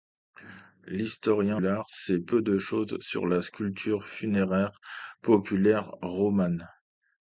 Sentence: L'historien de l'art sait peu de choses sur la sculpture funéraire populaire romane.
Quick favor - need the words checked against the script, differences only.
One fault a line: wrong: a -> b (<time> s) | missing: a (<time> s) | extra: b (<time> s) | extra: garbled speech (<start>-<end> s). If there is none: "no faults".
missing: de (1.6 s)